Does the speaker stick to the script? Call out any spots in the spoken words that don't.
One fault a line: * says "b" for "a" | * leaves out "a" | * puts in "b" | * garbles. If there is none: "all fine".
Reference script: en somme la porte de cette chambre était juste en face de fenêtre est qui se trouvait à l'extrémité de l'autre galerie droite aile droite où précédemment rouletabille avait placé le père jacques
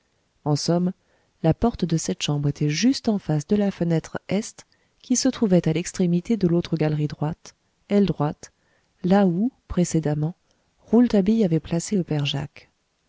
* puts in "la"
* puts in "là"